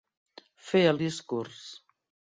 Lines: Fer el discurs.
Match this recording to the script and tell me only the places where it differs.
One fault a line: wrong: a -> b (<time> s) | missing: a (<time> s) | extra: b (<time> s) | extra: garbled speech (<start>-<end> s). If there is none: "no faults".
no faults